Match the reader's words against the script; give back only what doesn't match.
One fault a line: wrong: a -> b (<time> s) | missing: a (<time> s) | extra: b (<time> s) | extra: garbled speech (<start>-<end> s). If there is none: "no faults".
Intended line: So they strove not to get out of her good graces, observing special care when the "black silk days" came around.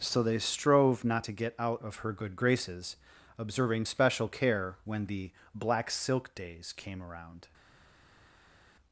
no faults